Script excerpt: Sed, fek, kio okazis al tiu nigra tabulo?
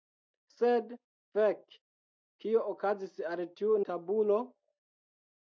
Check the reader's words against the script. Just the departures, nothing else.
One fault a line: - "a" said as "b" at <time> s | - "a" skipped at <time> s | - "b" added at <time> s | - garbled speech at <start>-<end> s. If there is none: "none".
- "nigra" skipped at 3.7 s